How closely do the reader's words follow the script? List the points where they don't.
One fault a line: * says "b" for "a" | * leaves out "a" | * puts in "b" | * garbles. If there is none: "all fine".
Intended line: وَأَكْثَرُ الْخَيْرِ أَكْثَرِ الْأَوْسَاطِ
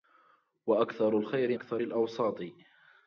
all fine